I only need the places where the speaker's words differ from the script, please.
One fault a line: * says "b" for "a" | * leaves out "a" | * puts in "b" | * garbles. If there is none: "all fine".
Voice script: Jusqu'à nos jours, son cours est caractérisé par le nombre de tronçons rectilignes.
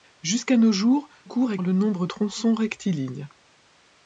* leaves out "son"
* leaves out "caractérisé par"
* leaves out "de"